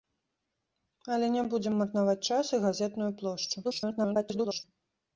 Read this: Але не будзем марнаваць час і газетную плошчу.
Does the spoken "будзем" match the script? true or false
true